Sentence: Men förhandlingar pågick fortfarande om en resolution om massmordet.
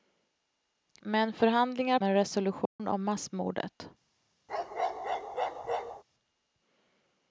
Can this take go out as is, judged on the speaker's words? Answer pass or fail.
fail